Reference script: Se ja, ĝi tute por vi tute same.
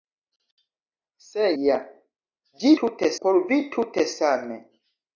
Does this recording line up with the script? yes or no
yes